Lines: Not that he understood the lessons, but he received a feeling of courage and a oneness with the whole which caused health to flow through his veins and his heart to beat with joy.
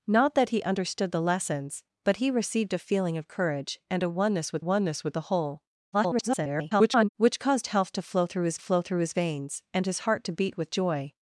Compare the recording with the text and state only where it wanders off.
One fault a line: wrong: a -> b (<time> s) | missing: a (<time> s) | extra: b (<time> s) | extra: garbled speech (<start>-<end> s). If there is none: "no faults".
extra: oneness with (4.6 s)
extra: garbled speech (5.9-7.1 s)
extra: flow through his (8.6 s)